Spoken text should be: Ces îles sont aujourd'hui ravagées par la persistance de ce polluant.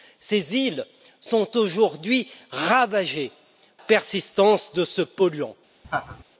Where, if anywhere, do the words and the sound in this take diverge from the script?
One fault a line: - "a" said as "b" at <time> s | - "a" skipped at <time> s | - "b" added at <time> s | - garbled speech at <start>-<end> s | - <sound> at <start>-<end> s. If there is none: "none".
- "par la" skipped at 3.3 s
- laugh at 5.8-6.2 s